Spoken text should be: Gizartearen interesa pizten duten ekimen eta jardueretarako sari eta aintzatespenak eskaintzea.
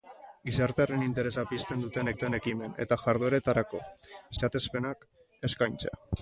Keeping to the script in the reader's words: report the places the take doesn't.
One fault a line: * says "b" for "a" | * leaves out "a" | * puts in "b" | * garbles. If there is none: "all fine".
* puts in "duten"
* leaves out "sari eta"